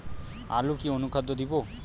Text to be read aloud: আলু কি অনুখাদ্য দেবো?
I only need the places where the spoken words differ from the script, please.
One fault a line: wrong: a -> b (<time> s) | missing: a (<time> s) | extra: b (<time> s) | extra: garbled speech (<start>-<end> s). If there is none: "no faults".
no faults